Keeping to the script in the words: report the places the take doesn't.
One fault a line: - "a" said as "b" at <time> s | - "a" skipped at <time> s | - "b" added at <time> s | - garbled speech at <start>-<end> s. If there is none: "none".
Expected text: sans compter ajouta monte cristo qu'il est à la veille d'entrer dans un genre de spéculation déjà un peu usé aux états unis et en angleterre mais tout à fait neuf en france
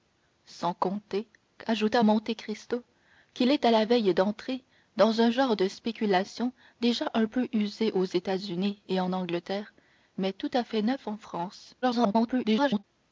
- garbled speech at 11.8-12.8 s